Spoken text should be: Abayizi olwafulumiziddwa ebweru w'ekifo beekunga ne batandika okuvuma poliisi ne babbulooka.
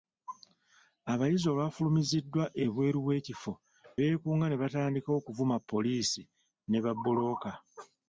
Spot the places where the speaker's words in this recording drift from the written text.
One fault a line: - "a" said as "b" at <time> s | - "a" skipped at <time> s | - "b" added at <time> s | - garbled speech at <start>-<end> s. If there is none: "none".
none